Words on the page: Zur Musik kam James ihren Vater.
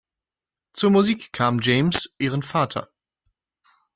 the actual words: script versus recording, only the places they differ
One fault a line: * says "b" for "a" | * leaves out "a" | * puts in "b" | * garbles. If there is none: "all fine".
all fine